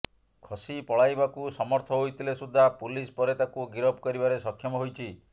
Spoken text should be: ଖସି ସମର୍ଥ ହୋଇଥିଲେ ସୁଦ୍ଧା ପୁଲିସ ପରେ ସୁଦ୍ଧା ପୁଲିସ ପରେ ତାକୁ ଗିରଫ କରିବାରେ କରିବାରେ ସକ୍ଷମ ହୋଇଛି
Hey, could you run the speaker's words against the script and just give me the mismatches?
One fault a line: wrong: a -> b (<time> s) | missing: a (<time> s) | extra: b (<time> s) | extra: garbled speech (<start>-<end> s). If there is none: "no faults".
extra: ପଳାଇବାକୁ (0.8 s)
missing: ସୁଦ୍ଧା ପୁଲିସ ପରେ (3.3 s)
missing: କରିବାରେ (4.4 s)